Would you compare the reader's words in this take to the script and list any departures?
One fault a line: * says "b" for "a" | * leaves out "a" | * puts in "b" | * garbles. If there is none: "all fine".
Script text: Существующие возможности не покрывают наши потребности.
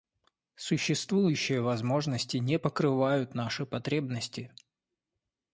all fine